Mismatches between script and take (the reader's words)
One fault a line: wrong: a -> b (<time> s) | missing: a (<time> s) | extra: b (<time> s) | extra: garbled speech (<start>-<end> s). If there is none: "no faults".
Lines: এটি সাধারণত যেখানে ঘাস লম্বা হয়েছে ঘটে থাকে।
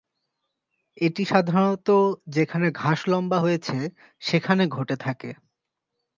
extra: সেখানে (4.2 s)